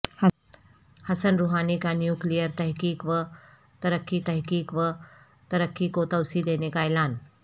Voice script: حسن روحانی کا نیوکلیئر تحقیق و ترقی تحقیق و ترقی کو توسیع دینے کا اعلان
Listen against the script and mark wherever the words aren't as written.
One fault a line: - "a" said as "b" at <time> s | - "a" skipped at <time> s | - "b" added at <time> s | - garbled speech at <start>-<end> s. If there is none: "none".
none